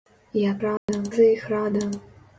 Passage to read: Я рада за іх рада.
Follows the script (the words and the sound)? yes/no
no